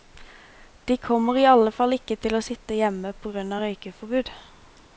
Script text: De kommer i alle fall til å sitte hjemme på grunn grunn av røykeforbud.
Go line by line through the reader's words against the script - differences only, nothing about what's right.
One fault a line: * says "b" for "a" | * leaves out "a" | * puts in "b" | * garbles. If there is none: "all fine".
* puts in "ikke"
* leaves out "grunn"